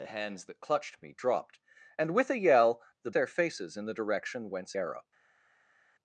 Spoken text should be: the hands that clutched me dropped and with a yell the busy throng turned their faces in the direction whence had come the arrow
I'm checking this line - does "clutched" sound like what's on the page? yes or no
yes